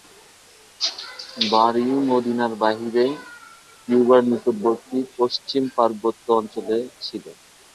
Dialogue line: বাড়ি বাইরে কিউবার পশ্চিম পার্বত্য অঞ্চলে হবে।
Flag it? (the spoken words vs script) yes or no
yes